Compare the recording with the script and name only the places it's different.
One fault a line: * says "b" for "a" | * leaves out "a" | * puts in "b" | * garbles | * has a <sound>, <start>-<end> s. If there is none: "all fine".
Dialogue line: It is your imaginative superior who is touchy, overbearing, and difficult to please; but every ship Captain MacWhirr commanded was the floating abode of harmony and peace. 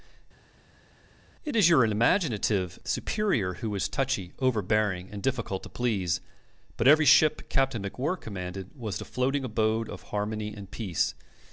all fine